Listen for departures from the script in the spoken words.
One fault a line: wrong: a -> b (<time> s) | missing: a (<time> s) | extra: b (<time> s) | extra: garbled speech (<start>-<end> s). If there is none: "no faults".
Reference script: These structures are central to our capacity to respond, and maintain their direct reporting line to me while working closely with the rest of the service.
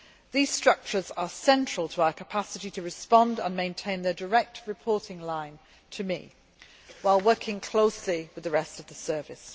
no faults